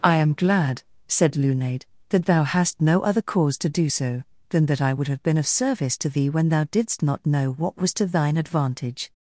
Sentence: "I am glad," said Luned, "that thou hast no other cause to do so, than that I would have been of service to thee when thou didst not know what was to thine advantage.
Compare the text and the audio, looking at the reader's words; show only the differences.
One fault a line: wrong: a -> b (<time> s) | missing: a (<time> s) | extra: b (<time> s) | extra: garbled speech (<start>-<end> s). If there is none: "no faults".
no faults